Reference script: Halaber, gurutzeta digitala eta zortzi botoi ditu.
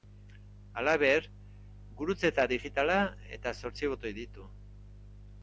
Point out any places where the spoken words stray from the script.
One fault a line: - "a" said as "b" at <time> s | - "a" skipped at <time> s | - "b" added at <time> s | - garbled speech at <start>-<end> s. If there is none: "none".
none